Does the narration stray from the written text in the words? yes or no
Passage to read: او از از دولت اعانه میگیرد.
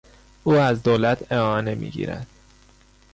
yes